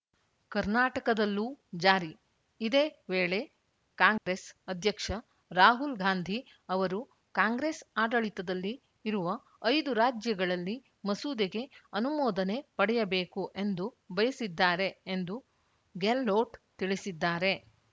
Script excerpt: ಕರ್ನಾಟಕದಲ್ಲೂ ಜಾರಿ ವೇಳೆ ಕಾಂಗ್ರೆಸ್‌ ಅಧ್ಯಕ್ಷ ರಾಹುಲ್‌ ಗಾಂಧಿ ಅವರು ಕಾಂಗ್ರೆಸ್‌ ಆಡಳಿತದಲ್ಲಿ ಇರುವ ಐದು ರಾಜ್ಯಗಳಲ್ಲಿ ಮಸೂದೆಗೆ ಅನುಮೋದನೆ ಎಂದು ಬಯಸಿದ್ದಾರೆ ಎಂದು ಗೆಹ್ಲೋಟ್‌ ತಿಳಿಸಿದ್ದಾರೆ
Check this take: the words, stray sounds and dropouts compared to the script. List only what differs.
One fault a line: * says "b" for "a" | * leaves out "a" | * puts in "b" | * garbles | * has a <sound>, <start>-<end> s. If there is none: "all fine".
* puts in "ಇದೇ"
* has a dropout, 4.2-4.3 s
* puts in "ಪಡೆಯಬೇಕು"